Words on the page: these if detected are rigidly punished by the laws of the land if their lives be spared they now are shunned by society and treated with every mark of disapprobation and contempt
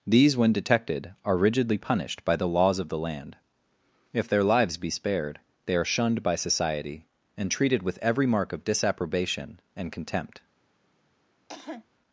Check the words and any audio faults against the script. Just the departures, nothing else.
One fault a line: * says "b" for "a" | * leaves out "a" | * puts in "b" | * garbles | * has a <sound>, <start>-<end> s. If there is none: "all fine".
* says "when" for "if"
* leaves out "now"
* has a cough, 11.5-11.8 s